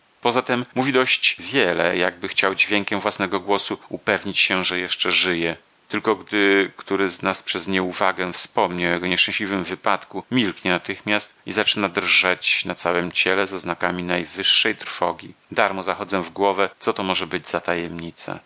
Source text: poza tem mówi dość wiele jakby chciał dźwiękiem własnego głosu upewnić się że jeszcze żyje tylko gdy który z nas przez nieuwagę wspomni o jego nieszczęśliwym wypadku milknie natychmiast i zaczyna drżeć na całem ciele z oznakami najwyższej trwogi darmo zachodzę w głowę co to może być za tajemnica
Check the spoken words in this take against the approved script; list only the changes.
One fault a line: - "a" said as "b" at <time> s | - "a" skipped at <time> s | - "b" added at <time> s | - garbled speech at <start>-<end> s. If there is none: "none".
none